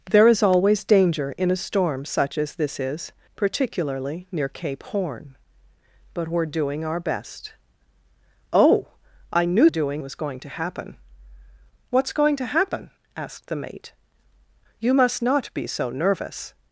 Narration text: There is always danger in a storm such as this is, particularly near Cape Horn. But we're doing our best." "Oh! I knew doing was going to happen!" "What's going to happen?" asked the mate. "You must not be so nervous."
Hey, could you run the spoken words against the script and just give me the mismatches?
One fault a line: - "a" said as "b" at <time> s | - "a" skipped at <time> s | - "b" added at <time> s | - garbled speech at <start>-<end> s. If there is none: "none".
none